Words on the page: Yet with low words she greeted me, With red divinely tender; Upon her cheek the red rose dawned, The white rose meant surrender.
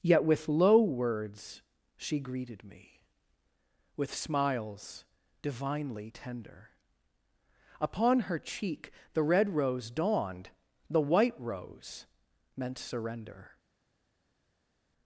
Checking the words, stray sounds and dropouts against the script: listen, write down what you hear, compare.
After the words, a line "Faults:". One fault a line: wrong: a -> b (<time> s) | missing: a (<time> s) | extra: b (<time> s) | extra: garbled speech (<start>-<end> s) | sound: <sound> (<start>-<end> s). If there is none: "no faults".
Yet with low words she greeted me, With smiles divinely tender; Upon her cheek the red rose dawned, The white rose meant surrender.
Faults:
wrong: red -> smiles (4.1 s)